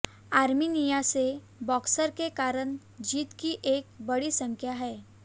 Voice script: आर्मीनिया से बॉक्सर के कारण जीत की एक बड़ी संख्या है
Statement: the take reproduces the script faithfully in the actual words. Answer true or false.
true